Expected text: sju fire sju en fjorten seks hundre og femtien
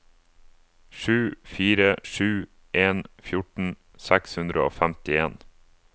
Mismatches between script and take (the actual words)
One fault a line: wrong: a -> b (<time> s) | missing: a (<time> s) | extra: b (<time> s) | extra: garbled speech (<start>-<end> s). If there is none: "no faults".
no faults